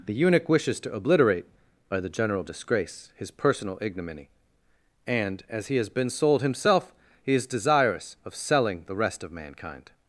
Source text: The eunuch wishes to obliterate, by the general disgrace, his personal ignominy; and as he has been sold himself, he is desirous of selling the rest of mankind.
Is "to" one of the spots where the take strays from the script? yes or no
no